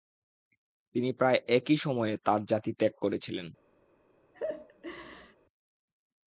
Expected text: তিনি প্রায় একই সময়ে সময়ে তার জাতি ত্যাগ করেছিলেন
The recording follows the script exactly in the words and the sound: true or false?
false